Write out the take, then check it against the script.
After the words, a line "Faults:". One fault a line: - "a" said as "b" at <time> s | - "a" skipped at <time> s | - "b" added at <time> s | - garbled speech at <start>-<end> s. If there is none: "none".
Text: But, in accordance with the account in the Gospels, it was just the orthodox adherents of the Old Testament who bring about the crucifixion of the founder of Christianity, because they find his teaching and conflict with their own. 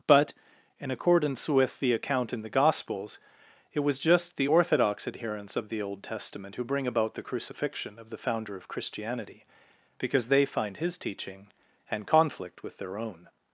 But, in accordance with the account in the Gospels, it was just the orthodox adherents of the Old Testament who bring about the crucifixion of the founder of Christianity, because they find his teaching and conflict with their own.
Faults:
none